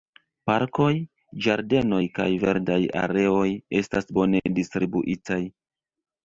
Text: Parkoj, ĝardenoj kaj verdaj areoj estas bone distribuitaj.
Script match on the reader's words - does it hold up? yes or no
yes